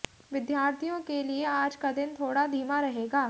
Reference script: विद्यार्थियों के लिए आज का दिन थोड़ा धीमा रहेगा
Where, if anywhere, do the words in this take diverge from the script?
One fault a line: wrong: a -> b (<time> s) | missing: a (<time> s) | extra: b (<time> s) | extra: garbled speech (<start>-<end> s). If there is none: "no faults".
no faults